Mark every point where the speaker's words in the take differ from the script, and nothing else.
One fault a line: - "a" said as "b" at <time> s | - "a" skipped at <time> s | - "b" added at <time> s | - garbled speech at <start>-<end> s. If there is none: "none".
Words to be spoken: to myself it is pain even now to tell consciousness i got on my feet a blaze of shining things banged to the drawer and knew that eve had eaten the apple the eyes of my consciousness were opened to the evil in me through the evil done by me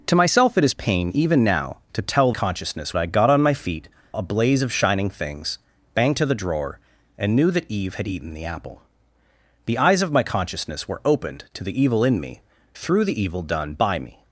none